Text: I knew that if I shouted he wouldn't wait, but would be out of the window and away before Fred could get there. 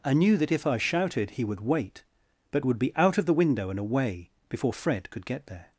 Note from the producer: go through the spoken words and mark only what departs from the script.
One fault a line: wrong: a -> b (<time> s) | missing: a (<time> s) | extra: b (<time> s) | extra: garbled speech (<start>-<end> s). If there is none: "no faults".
wrong: wouldn't -> would (1.4 s)